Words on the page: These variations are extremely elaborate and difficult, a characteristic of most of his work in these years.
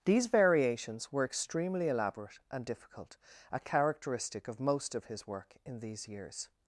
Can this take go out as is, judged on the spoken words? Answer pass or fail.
fail